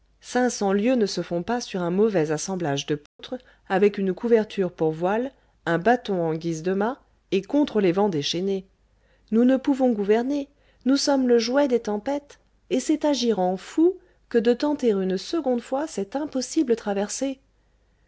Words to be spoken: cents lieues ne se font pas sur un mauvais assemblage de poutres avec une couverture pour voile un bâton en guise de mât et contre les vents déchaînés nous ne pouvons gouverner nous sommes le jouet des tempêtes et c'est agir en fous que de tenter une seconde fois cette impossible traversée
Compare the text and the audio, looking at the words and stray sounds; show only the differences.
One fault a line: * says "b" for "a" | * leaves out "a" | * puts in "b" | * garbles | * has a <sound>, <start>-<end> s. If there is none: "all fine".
* has a dropout, 3.1-3.2 s